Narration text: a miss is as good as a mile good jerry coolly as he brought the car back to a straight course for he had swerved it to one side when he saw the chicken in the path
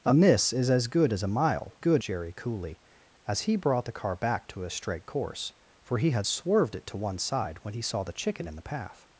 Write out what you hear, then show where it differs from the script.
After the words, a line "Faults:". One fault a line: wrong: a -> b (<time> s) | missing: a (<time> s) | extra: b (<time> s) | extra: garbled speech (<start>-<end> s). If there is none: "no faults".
a miss is as good as a mile good jerry coolly as he brought the car back to a straight course for he had swerved it to one side when he saw the chicken in the path
Faults:
no faults